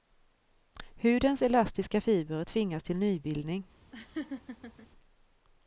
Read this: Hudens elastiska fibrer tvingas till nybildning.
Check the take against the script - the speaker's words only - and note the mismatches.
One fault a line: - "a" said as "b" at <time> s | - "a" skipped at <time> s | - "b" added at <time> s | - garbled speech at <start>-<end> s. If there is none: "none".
none